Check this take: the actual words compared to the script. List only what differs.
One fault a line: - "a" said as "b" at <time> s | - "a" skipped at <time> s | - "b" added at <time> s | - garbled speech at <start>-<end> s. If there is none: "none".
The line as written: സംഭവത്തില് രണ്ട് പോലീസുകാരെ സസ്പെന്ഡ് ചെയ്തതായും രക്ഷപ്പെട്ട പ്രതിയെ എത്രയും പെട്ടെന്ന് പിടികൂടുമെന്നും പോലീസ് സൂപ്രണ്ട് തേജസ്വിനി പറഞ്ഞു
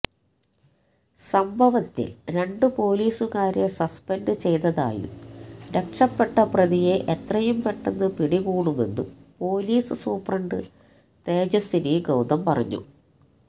- "ഗൌതം" added at 12.0 s